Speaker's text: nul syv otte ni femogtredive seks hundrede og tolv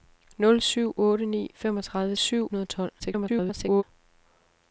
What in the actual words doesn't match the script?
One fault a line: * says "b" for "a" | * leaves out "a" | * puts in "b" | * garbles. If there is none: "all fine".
* says "syv" for "seks"
* garbles